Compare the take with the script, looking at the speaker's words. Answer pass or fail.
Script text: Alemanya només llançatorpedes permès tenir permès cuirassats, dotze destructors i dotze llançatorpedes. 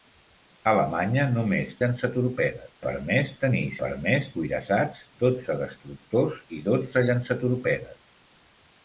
pass